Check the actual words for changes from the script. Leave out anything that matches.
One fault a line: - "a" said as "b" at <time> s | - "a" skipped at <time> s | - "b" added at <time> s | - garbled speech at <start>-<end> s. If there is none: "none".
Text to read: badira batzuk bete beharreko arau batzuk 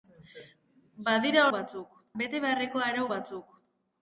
none